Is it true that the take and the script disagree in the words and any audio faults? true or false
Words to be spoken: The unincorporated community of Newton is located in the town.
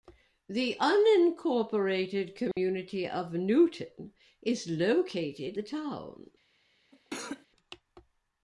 true